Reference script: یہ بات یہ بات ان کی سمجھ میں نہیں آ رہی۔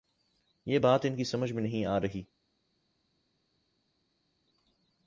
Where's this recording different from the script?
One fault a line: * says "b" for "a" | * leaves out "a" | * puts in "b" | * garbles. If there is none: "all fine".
* leaves out "یہ بات"